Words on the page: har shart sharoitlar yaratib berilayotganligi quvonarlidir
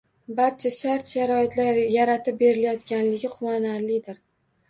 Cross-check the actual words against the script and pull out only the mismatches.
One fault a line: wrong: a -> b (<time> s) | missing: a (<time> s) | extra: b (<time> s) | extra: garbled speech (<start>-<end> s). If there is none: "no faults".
wrong: har -> barcha (0.4 s)